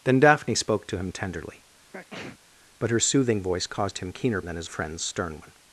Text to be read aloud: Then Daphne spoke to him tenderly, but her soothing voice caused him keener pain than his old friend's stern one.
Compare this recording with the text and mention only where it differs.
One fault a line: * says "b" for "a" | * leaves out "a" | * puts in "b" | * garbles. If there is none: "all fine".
* leaves out "pain"
* leaves out "old"